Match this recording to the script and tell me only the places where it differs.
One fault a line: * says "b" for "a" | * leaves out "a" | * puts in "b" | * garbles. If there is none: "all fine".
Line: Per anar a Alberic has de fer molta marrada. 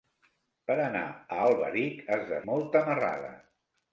* leaves out "fer"